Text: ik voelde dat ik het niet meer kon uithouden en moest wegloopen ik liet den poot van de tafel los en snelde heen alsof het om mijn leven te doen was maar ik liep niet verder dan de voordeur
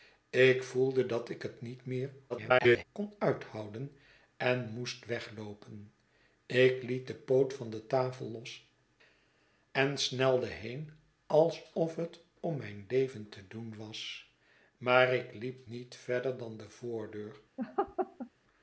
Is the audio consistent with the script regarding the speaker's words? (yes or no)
no